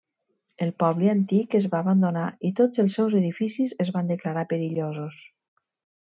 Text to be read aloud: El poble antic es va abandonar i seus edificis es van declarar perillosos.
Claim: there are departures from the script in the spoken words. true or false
true